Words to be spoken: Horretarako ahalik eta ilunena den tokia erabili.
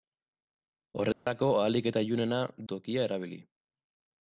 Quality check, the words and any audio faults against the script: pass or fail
fail